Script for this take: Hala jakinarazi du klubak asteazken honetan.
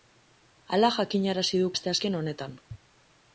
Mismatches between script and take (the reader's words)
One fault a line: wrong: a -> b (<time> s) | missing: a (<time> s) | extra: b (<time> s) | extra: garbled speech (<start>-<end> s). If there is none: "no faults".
missing: klubak (1.7 s)